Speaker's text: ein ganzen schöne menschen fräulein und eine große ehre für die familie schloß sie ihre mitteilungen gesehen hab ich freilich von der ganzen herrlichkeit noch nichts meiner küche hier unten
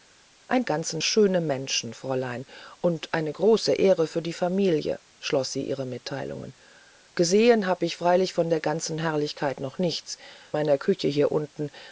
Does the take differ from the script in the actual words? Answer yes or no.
no